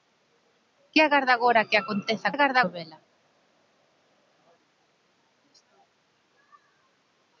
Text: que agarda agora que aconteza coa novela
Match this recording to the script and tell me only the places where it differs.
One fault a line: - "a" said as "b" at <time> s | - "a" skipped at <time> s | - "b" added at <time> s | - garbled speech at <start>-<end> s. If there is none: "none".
- "coa" said as "agarda" at 2.3 s